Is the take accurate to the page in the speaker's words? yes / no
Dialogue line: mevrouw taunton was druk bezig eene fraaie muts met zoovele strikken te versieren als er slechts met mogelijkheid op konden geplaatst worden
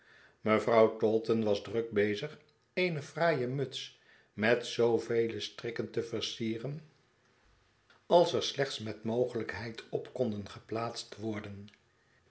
yes